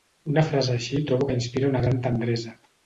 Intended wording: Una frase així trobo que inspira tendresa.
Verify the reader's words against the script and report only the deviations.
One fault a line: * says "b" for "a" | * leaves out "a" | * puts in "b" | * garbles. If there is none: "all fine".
* puts in "una gran"